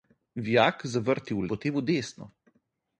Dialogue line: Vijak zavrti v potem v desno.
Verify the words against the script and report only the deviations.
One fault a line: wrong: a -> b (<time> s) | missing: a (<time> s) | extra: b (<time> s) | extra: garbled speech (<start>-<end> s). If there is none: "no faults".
no faults